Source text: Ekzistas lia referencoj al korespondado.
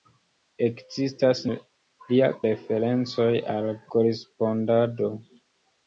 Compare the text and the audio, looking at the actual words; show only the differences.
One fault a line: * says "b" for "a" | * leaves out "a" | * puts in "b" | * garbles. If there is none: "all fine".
all fine